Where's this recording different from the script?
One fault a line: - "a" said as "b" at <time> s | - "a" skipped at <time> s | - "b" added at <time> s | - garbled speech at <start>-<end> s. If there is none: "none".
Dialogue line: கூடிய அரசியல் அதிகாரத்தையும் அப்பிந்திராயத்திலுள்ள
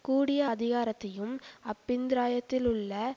- "அரசியல்" skipped at 0.5 s